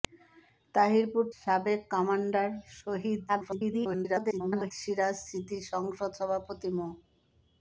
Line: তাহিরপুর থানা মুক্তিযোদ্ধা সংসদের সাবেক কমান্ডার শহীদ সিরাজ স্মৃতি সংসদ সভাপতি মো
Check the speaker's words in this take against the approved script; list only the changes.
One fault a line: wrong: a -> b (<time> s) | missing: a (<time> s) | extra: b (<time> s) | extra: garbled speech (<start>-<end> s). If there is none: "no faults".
missing: থানা মুক্তিযোদ্ধা সংসদের (1.2 s)
extra: garbled speech (3.3-4.7 s)